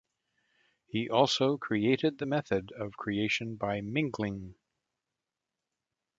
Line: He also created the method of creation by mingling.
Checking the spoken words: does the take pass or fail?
pass